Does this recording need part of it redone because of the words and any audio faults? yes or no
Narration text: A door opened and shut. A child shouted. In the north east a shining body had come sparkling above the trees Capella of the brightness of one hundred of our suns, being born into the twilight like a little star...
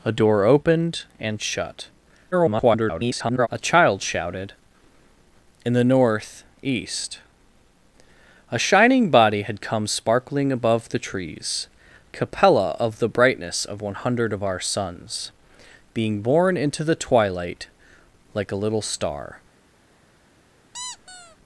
yes